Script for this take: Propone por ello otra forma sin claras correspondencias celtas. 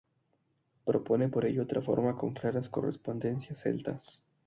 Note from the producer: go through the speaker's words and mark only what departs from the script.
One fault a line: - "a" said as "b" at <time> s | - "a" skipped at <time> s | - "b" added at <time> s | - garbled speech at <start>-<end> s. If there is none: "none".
- "sin" said as "con" at 2.2 s